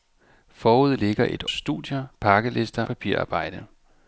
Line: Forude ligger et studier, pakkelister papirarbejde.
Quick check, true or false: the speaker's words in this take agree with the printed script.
true